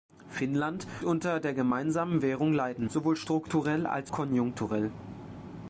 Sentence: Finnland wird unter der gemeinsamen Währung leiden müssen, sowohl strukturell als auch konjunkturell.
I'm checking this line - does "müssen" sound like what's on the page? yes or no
no